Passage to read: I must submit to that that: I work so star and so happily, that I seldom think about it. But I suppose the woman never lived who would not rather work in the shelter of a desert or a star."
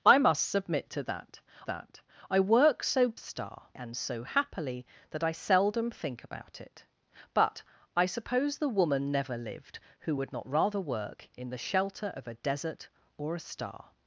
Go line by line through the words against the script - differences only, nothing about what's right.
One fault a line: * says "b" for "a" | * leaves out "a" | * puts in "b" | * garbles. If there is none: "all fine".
all fine